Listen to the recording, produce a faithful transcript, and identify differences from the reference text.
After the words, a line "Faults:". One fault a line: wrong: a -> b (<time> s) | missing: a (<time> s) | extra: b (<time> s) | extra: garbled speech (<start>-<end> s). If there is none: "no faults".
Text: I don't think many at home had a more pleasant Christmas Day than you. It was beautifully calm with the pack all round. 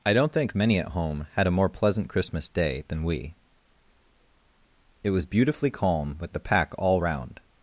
I don't think many at home had a more pleasant Christmas Day than we. It was beautifully calm with the pack all round.
Faults:
wrong: you -> we (3.0 s)